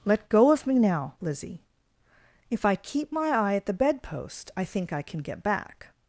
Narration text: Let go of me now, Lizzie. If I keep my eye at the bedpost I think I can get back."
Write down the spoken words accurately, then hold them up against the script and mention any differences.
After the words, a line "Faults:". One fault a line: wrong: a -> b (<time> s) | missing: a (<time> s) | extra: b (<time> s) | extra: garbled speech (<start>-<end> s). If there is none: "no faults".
Let go of me now, Lizzie. If I keep my eye at the bedpost I think I can get back."
Faults:
no faults